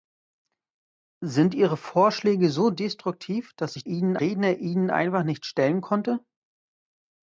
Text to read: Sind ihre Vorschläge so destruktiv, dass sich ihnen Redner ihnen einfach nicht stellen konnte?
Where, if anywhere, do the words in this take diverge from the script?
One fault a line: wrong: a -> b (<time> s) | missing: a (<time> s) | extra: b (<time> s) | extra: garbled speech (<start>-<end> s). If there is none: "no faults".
no faults